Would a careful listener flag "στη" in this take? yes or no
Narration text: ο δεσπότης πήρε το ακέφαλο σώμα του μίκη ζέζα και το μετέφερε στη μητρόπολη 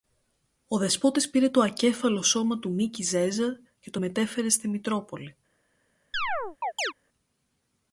no